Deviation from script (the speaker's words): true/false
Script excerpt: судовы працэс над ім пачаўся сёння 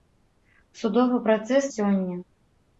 true